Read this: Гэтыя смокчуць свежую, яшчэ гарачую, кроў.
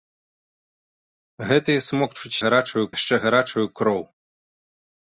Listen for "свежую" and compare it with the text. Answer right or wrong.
wrong